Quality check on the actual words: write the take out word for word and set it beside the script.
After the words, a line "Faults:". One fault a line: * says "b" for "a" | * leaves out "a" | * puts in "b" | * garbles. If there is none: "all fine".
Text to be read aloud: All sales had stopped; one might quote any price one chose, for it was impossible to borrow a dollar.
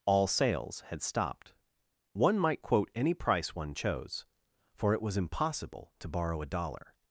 All sales had stopped; one might quote any price one chose, for it was impossible to borrow a dollar.
Faults:
all fine